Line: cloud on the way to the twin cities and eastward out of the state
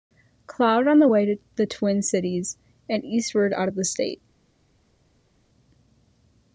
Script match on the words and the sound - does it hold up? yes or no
yes